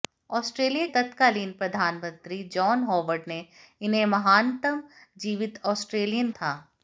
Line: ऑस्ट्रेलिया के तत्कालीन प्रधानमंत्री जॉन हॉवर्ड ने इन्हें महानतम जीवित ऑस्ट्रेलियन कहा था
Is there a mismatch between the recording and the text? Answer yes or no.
yes